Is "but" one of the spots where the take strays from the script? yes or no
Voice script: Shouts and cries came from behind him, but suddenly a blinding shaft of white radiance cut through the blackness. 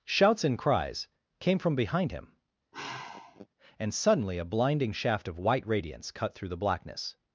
yes